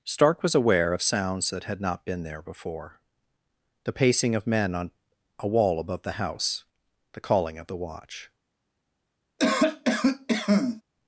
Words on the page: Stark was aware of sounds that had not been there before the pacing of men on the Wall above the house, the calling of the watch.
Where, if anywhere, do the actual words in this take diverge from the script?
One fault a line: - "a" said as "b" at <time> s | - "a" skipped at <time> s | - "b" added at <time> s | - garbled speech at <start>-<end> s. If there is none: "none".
- "the" said as "a" at 5.4 s